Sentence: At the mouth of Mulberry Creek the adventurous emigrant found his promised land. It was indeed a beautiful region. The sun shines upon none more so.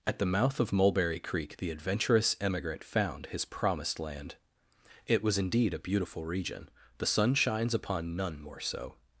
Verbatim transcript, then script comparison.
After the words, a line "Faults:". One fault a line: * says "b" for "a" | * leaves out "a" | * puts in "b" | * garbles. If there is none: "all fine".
At the mouth of Mulberry Creek the adventurous emigrant found his promised land. It was indeed a beautiful region. The sun shines upon none more so.
Faults:
all fine